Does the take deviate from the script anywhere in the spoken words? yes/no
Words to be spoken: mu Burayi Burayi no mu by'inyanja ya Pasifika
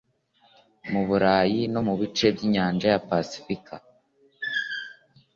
yes